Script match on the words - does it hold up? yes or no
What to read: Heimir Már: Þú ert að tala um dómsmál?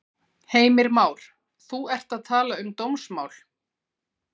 yes